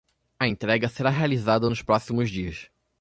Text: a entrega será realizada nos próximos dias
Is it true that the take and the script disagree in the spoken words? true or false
false